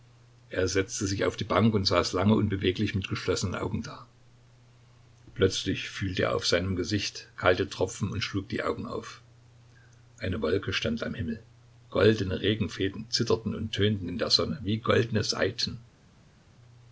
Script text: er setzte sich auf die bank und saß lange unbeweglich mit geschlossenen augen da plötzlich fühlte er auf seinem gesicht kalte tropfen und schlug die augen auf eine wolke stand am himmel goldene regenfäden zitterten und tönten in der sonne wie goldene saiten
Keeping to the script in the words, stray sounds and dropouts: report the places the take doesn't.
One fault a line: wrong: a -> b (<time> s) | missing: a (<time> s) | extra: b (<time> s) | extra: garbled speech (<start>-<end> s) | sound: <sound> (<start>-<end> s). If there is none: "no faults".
no faults